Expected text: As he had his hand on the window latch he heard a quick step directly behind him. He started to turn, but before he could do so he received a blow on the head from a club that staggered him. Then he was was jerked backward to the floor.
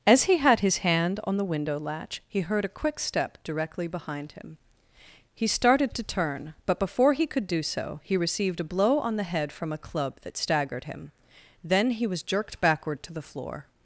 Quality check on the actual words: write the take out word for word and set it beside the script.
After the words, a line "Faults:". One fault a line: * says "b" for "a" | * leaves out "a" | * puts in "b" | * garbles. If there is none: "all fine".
As he had his hand on the window latch he heard a quick step directly behind him. He started to turn, but before he could do so he received a blow on the head from a club that staggered him. Then he was jerked backward to the floor.
Faults:
* leaves out "was"